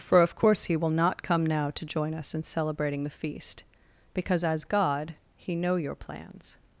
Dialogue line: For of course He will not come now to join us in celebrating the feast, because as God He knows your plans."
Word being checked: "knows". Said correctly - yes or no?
no